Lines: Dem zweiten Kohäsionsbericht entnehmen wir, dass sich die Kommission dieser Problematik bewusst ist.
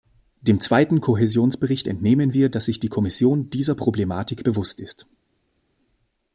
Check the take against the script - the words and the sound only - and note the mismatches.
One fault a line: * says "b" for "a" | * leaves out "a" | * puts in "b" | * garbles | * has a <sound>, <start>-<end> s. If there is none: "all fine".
all fine